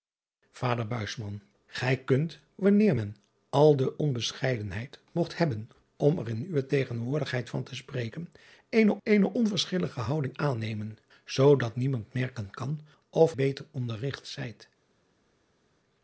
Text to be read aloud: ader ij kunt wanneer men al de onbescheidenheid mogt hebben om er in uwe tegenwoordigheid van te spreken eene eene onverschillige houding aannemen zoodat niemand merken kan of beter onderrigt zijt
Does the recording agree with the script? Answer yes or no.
yes